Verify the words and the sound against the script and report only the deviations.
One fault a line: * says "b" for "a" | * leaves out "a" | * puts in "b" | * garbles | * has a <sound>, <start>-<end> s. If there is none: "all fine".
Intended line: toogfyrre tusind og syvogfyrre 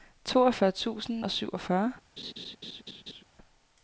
* has a laugh, 2.2-3.2 s